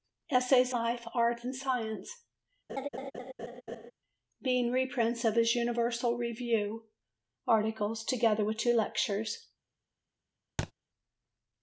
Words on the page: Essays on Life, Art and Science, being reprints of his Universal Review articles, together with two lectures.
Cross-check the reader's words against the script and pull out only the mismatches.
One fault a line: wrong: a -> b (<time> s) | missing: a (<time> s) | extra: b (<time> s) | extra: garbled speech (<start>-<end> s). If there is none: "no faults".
missing: on (0.7 s)